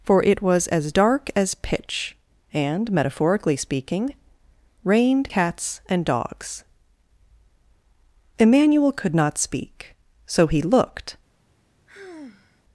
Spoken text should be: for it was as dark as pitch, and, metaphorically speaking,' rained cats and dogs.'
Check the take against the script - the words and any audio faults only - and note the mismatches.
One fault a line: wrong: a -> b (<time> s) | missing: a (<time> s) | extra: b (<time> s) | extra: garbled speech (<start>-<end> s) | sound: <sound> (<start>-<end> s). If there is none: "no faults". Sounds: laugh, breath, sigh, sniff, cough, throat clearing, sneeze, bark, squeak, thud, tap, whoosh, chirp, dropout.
extra: Emmanuel could not speak so he looked (8.4 s)
sound: sigh (11.9-12.6 s)